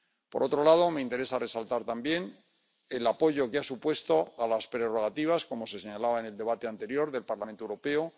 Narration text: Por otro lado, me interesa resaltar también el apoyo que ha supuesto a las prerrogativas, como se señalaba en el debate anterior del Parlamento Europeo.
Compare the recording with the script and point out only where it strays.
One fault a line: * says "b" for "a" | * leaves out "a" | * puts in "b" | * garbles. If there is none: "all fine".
all fine